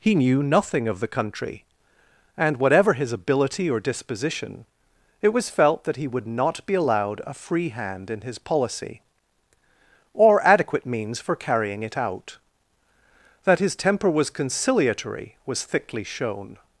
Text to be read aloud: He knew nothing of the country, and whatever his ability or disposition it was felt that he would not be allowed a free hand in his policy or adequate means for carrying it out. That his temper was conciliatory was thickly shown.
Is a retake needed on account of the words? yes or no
no